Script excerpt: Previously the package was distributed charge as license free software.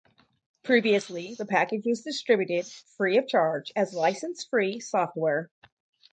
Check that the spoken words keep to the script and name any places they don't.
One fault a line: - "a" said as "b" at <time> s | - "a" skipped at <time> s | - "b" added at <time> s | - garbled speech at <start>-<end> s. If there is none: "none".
- "free of" added at 3.0 s